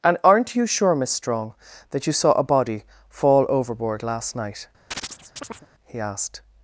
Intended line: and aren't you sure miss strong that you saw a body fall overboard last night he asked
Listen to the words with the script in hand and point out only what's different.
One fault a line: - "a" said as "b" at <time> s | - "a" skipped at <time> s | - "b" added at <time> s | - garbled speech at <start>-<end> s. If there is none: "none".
none